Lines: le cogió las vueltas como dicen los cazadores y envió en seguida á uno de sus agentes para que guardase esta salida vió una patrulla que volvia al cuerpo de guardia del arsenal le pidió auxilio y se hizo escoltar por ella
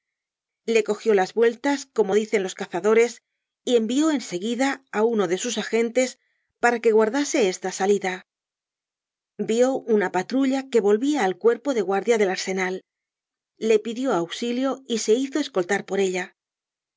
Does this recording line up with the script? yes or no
yes